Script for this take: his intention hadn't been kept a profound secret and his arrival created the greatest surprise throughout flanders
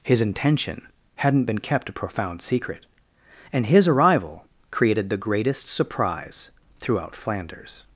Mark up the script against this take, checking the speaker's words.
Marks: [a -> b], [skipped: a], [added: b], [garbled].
his intention hadn't been kept a profound secret and his arrival created the greatest surprise throughout flanders